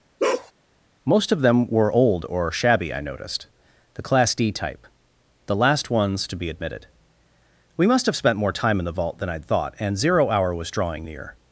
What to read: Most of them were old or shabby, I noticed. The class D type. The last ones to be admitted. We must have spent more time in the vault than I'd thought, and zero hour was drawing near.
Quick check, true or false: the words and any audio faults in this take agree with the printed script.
false